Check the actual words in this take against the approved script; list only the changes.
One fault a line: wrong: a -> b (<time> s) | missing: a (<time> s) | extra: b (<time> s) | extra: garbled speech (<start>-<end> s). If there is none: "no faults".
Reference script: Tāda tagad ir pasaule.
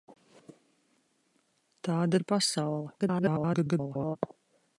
missing: tagad (2.2 s)
extra: garbled speech (3.0-4.2 s)